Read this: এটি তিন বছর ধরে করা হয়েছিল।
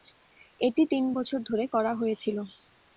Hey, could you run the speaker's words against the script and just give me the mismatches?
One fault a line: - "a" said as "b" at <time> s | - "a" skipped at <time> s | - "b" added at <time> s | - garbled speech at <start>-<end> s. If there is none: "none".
none